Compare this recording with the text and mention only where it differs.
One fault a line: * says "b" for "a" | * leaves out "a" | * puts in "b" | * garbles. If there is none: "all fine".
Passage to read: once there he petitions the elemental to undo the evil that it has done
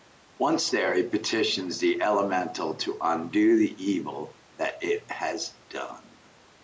all fine